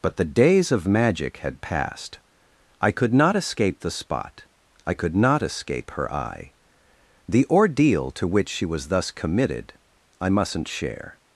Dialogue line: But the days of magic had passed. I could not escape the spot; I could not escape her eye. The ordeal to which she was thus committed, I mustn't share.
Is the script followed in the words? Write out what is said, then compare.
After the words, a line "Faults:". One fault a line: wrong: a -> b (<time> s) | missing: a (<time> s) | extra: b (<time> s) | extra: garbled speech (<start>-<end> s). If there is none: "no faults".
But the days of magic had passed. I could not escape the spot; I could not escape her eye. The ordeal to which she was thus committed, I mustn't share.
Faults:
no faults